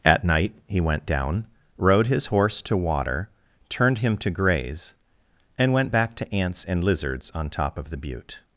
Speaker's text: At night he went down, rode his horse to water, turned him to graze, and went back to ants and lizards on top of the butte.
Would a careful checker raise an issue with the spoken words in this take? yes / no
no